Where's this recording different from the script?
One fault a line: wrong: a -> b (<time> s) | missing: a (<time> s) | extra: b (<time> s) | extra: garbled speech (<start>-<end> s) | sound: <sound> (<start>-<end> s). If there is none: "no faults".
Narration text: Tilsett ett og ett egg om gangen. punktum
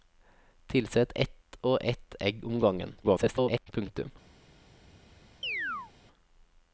extra: garbled speech (3.0-3.7 s)
sound: chirp (5.4-5.9 s)